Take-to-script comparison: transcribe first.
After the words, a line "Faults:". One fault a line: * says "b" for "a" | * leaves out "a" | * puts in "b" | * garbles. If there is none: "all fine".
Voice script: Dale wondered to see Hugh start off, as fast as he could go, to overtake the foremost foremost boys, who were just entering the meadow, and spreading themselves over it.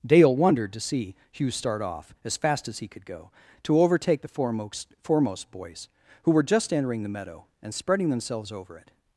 Dale wondered to see Hugh start off, as fast as he could go, to overtake the foremost foremost boys, who were just entering the meadow, and spreading themselves over it.
Faults:
all fine